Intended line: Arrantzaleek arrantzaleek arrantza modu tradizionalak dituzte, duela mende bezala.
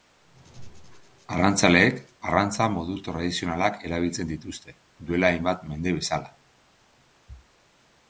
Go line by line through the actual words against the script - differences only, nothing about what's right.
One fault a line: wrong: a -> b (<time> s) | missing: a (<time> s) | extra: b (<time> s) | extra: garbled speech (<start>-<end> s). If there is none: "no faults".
missing: arrantzaleek (2.0 s)
extra: erabiltzen (3.9 s)
extra: hainbat (5.3 s)